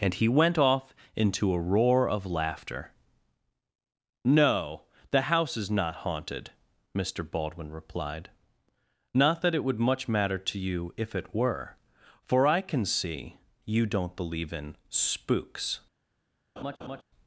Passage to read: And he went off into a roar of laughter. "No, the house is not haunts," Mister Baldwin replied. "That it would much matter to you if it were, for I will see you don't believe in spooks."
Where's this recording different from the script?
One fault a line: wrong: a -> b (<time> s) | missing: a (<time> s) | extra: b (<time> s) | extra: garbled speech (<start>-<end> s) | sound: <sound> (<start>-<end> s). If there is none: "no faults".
wrong: haunts -> haunted (6.1 s)
extra: Not (9.1 s)
wrong: will -> can (12.6 s)
sound: laugh (16.6-17.0 s)